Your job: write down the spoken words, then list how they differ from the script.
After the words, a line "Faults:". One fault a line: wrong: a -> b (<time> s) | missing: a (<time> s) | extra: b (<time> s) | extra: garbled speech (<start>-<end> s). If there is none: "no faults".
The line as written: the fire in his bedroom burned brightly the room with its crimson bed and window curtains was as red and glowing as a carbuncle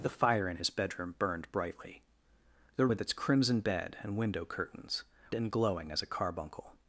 the fire in his bedroom burned brightly the with its crimson bed and window curtains and glowing as a carbuncle
Faults:
missing: room (2.9 s)
missing: was as red (5.0 s)